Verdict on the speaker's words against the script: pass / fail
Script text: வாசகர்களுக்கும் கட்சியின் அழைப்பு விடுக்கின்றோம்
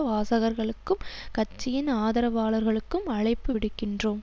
fail